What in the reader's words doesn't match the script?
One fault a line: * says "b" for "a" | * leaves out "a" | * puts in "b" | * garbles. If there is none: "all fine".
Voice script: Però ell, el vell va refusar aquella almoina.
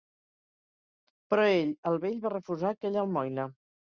all fine